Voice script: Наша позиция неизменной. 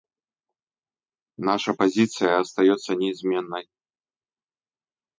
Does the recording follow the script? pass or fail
fail